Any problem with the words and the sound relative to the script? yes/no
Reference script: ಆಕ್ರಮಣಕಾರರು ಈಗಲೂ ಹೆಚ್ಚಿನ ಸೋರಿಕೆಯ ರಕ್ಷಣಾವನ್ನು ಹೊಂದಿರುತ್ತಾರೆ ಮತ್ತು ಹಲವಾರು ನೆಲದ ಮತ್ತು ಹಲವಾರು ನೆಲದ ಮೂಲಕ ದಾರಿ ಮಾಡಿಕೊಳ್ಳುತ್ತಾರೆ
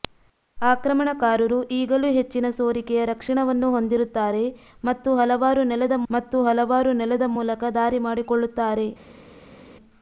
no